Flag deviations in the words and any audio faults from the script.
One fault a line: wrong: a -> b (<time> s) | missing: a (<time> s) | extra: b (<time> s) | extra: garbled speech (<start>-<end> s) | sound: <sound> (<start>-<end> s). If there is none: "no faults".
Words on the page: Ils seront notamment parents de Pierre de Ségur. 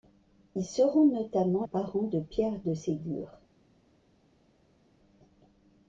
no faults